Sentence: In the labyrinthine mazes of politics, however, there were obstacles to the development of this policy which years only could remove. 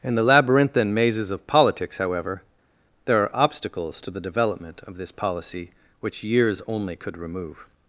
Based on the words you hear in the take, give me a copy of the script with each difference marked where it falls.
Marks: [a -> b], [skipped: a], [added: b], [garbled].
In the labyrinthine mazes of politics, however, there [were -> are] obstacles to the development of this policy which years only could remove.